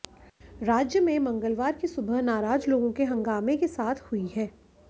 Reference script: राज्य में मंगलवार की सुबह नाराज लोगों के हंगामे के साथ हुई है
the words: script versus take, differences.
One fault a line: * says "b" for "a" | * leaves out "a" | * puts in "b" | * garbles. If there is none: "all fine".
all fine